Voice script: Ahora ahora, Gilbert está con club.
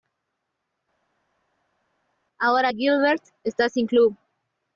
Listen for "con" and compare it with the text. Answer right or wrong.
wrong